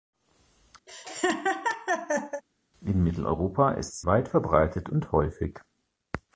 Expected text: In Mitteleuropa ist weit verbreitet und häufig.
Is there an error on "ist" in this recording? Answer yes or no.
no